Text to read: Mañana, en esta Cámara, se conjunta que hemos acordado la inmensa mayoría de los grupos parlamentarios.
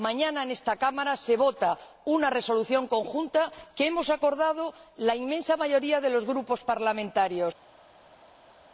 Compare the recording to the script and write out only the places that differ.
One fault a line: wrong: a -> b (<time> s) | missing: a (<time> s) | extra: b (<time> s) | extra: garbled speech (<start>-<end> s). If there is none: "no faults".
extra: vota una resolución (1.4 s)